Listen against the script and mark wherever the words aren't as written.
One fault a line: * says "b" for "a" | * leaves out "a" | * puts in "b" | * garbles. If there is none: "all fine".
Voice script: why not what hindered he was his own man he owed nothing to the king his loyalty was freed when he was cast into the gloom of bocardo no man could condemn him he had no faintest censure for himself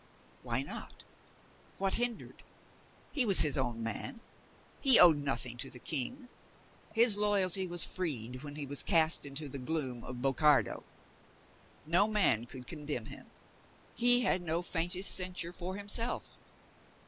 all fine